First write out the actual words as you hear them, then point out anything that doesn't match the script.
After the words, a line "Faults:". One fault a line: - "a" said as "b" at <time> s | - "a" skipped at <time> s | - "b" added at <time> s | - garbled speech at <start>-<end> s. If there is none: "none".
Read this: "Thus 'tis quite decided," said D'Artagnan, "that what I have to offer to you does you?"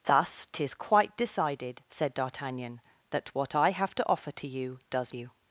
"Thus 'tis quite decided," said D'Artagnan, "that what I have to offer to you does you?"
Faults:
none